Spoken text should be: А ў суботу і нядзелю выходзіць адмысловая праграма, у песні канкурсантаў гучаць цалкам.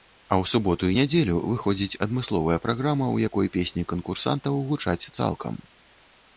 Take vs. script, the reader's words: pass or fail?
fail